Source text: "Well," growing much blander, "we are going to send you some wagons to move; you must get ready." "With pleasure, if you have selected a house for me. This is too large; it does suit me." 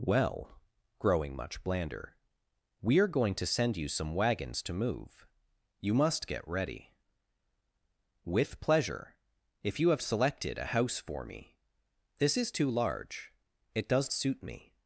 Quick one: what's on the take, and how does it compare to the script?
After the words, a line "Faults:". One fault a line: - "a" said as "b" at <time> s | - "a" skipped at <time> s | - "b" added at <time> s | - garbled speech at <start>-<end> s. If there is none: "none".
"Well," growing much blander, "we are going to send you some wagons to move; you must get ready." "With pleasure, if you have selected a house for me. This is too large; it does suit me."
Faults:
none